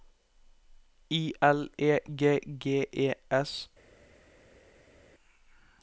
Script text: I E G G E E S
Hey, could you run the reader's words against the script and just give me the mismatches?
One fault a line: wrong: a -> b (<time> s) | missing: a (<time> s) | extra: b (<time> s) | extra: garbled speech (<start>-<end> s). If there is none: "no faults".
extra: L (1.4 s)
missing: E (3.1 s)